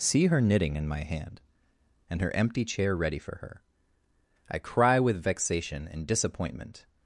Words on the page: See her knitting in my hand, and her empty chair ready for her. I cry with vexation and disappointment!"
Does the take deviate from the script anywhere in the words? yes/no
no